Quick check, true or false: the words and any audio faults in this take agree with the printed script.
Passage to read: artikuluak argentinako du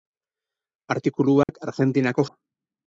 false